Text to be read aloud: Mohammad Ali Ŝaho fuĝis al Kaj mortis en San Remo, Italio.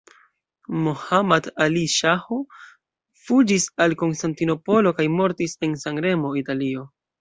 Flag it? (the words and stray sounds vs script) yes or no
yes